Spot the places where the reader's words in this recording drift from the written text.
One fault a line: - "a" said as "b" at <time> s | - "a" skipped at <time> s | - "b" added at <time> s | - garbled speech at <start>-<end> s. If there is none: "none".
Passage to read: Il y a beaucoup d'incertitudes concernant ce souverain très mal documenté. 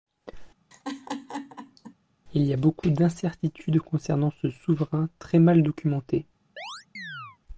none